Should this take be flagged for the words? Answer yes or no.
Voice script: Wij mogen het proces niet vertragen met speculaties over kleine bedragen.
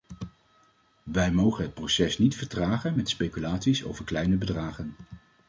no